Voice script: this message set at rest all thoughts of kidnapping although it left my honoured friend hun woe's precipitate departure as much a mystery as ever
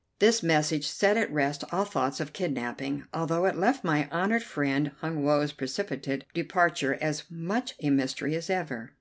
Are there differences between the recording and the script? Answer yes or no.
no